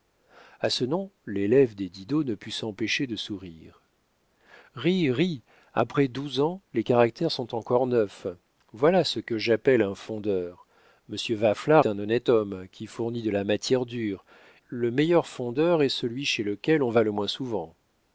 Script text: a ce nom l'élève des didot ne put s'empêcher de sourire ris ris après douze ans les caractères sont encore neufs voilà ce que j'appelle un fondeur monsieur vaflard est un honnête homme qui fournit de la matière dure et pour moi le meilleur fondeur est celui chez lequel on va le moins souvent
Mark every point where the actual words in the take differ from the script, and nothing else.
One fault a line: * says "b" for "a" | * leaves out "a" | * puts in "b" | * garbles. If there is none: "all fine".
* leaves out "est"
* leaves out "et pour moi"